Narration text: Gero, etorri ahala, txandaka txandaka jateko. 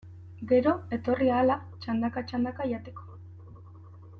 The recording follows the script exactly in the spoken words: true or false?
true